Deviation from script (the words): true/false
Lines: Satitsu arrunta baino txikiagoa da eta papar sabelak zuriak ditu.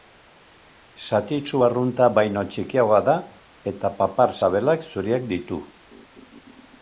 false